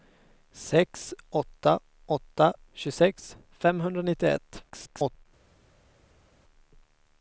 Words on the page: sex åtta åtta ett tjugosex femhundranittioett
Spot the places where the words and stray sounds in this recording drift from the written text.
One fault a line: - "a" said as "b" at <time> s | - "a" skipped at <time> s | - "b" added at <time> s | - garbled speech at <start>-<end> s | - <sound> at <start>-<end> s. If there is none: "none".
- "ett" skipped at 2.5 s
- garbled speech at 4.7-5.3 s